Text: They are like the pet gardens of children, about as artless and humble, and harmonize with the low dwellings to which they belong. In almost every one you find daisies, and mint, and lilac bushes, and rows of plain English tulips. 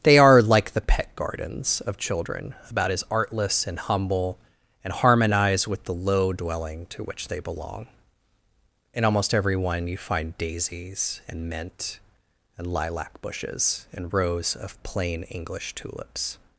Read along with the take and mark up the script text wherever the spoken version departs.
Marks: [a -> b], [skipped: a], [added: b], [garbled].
They are like the pet gardens of children, about as artless and humble, and harmonize with the low [dwellings -> dwelling] to which they belong. In almost every one you find daisies, and mint, and lilac bushes, and rows of plain English tulips.